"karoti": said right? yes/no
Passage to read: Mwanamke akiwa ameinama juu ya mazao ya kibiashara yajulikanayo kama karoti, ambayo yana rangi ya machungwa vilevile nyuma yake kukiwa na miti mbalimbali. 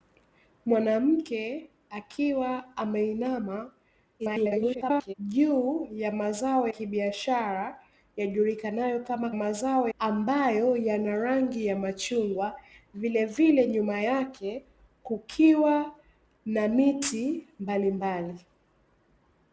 no